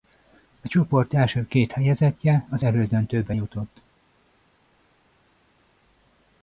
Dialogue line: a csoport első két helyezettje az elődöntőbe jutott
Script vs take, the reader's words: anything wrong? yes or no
no